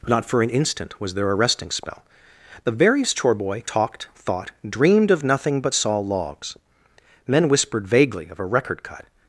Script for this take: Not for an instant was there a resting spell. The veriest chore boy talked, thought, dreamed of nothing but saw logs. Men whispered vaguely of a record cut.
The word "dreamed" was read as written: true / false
true